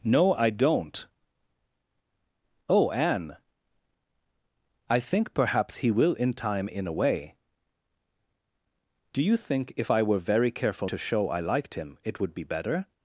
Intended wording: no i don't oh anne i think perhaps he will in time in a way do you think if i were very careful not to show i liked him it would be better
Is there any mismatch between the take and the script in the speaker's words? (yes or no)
yes